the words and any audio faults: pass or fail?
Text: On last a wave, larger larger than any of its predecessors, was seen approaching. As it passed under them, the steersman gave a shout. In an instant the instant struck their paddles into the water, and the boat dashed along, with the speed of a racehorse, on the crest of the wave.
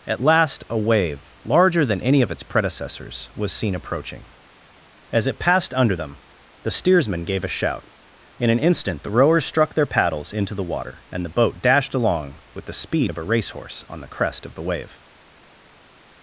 fail